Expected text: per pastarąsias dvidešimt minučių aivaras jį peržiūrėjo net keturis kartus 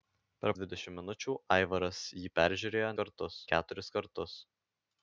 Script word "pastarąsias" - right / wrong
wrong